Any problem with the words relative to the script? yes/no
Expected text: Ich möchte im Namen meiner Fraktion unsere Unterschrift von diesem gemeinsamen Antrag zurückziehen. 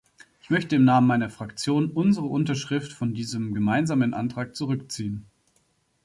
no